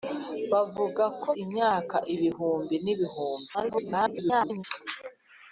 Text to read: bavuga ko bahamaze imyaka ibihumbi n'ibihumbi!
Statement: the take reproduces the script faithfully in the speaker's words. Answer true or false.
false